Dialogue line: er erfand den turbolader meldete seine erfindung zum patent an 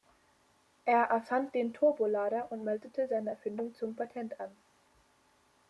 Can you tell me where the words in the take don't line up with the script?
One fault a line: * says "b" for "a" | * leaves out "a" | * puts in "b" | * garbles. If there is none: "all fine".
* puts in "und"